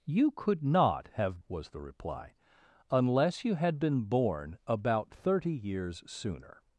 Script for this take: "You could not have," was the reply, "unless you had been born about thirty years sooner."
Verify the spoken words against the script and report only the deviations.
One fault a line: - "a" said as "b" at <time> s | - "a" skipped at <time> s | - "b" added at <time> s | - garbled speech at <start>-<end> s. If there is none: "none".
none